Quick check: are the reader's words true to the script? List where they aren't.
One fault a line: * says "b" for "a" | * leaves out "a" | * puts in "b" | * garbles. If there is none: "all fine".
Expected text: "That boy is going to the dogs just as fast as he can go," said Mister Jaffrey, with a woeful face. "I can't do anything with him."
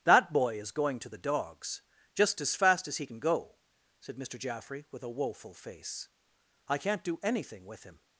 all fine